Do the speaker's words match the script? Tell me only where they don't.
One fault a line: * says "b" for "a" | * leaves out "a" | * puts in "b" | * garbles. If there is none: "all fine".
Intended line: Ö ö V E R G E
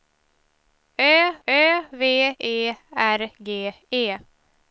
all fine